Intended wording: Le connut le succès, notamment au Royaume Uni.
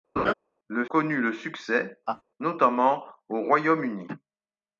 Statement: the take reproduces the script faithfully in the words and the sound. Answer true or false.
false